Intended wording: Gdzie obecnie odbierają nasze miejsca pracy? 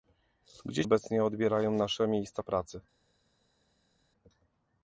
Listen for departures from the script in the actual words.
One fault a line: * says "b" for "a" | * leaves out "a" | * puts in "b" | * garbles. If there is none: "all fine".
all fine